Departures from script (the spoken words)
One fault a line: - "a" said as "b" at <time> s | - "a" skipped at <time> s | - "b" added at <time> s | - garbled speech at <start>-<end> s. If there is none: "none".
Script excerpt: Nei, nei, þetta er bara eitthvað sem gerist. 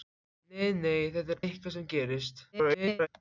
- "bara" skipped at 1.4 s
- garbled speech at 2.5-3.1 s